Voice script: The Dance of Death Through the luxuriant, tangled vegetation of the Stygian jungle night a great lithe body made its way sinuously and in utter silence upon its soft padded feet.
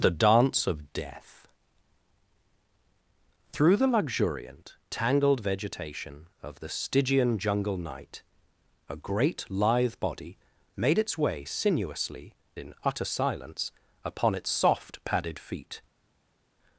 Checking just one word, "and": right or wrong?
wrong